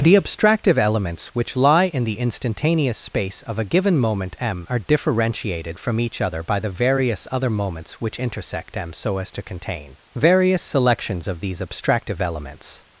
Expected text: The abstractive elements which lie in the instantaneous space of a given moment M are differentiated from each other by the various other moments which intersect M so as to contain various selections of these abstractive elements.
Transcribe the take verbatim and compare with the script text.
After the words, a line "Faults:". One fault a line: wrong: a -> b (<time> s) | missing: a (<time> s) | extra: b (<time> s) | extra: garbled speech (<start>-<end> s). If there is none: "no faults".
The abstractive elements which lie in the instantaneous space of a given moment M are differentiated from each other by the various other moments which intersect M so as to contain various selections of these abstractive elements.
Faults:
no faults